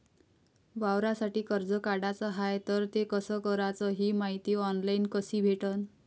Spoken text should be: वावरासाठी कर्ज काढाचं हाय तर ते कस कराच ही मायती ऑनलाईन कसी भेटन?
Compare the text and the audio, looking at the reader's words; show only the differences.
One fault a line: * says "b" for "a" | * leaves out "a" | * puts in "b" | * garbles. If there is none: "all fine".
all fine